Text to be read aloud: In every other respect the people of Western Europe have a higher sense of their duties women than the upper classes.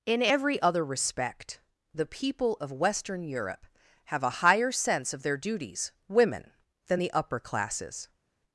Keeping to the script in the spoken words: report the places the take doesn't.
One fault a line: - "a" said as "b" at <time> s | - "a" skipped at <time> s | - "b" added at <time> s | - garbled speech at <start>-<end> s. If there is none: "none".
none